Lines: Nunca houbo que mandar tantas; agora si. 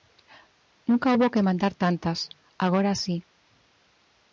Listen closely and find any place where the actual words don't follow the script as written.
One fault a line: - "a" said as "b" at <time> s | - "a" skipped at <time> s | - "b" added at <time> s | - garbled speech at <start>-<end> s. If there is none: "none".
none